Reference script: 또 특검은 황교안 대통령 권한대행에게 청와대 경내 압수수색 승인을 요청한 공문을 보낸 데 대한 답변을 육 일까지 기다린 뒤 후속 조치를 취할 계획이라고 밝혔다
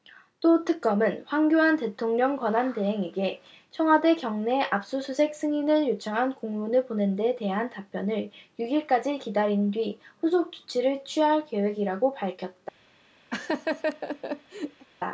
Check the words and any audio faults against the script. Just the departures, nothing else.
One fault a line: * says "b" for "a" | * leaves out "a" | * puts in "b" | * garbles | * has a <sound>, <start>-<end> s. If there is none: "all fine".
* has a laugh, 13.3-14.9 s